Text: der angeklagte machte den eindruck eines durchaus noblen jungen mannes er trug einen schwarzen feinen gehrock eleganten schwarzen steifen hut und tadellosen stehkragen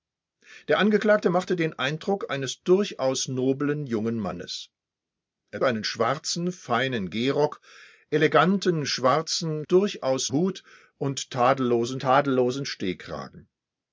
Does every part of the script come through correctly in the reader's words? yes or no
no